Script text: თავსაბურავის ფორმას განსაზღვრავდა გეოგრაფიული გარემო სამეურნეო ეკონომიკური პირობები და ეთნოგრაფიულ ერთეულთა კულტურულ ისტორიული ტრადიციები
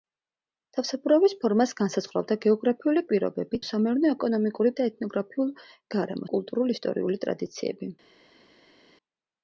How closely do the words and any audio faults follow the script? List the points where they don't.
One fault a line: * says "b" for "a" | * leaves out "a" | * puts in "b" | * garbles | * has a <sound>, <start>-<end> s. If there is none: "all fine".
* says "პირობები" for "გარემო"
* leaves out "პირობები"
* says "გარემო" for "ერთეულთა"